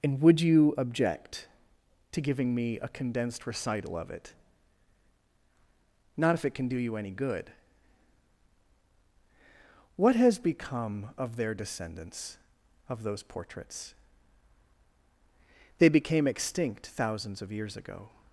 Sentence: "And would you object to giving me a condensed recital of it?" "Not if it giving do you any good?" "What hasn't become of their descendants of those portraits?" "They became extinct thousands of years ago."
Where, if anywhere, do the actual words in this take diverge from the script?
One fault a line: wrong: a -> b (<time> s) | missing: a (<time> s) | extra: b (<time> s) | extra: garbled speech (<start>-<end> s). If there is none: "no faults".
wrong: giving -> can (6.5 s)
wrong: hasn't -> has (10.1 s)